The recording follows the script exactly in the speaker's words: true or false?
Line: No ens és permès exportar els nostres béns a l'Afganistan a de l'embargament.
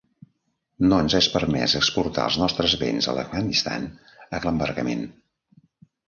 true